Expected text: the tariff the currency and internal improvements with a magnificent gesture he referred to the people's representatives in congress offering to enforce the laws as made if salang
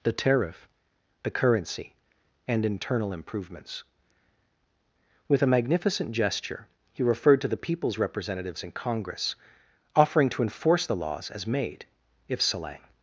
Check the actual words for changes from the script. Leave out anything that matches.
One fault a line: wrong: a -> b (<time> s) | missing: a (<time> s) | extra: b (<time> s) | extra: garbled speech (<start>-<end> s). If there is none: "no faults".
no faults